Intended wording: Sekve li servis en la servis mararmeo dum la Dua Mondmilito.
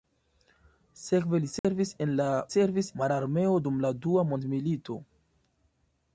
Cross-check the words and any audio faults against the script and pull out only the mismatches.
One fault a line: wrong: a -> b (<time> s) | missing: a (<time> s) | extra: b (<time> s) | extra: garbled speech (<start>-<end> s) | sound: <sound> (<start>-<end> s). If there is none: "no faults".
sound: dropout (1.6-1.6 s)